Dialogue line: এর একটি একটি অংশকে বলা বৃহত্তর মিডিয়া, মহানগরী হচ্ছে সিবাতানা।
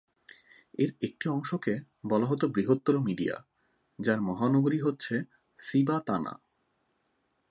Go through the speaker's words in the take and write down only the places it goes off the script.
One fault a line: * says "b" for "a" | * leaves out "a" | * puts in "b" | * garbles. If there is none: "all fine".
* leaves out "একটি"
* puts in "হত"
* puts in "যার"